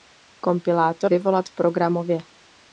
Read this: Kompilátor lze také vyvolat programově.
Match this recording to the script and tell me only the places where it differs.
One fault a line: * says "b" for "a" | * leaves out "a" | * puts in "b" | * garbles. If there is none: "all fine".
* leaves out "lze také"